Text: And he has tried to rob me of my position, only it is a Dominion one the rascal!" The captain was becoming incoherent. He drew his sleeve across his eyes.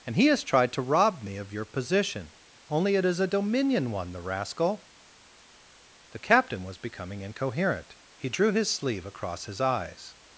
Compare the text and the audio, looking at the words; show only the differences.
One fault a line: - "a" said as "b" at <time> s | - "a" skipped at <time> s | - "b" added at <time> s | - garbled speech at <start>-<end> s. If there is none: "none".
- "my" said as "your" at 1.5 s